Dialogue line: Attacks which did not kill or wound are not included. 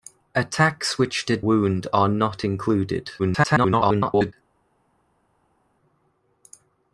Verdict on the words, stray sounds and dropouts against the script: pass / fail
fail